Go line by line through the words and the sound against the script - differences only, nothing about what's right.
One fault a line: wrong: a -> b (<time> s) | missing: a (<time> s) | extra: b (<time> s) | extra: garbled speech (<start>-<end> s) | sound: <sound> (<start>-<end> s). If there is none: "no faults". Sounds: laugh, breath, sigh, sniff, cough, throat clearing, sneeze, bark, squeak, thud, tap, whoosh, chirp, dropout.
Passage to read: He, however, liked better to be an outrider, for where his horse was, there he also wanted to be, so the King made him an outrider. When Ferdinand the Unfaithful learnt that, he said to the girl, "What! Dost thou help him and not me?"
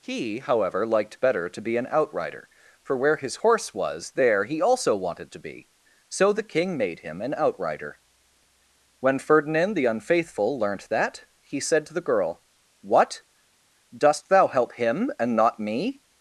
no faults